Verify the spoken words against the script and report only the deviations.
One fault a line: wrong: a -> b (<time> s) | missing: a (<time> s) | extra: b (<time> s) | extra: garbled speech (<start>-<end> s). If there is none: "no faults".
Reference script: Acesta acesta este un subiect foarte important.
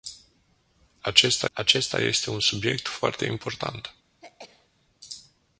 no faults